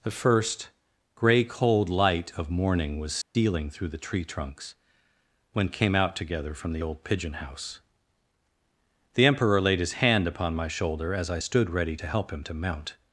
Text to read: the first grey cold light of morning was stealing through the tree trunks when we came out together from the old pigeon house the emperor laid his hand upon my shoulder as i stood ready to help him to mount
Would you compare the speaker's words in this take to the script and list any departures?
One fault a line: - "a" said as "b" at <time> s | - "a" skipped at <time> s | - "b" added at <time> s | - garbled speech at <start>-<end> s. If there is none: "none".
- "we" skipped at 5.7 s